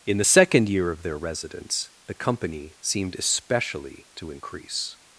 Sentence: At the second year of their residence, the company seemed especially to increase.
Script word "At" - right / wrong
wrong